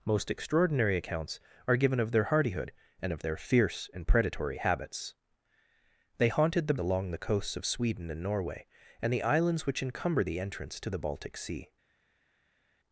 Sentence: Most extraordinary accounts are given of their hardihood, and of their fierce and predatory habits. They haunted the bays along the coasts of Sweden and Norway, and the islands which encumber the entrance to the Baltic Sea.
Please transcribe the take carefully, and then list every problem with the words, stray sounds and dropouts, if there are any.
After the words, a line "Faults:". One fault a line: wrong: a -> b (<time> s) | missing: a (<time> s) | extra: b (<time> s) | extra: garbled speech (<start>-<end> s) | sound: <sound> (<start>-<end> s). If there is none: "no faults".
Most extraordinary accounts are given of their hardihood, and of their fierce and predatory habits. They haunted the along the coasts of Sweden and Norway, and the islands which encumber the entrance to the Baltic Sea.
Faults:
missing: bays (6.8 s)